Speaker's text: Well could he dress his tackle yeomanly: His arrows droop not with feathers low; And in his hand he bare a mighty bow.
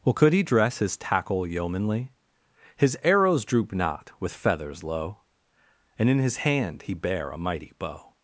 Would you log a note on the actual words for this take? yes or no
no